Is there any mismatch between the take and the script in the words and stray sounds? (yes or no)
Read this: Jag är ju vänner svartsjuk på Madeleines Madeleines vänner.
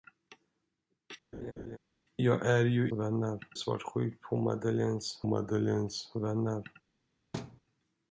yes